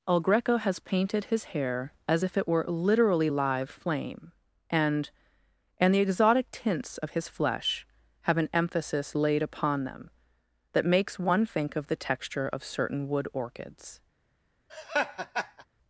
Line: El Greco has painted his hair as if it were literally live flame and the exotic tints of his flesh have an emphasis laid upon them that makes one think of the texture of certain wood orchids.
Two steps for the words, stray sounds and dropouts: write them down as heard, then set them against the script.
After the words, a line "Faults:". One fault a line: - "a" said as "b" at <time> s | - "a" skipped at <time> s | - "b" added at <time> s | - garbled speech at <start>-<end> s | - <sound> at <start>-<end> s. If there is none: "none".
El Greco has painted his hair as if it were literally live flame and and the exotic tints of his flesh have an emphasis laid upon them that makes one think of the texture of certain wood orchids.
Faults:
- "and" added at 5.8 s
- laugh at 14.7-15.7 s